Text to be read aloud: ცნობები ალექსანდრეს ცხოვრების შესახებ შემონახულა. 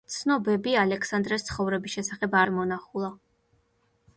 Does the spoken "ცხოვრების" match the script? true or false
true